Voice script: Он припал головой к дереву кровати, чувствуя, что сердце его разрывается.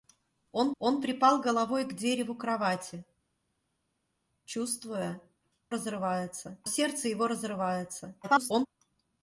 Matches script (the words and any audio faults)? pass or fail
fail